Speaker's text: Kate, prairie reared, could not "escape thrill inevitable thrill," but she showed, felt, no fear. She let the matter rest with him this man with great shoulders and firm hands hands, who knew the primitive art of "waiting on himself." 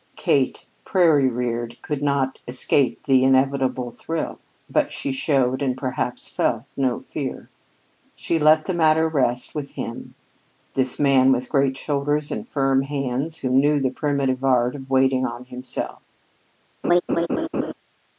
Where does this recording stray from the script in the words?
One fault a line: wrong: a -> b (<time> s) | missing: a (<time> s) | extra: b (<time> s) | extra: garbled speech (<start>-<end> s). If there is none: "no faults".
wrong: thrill -> the (3.0 s)
extra: and perhaps (5.6 s)
missing: hands (13.4 s)